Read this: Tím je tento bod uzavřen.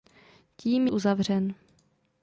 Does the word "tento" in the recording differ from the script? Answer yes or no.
yes